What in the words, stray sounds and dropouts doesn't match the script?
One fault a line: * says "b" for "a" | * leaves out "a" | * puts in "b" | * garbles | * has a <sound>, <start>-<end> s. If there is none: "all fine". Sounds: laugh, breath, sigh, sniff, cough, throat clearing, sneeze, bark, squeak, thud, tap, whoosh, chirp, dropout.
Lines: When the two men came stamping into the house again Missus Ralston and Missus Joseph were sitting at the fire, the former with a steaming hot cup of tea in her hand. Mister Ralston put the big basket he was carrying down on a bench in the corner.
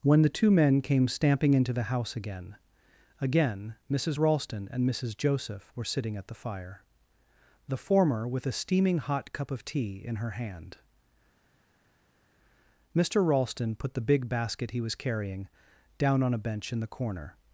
* puts in "again"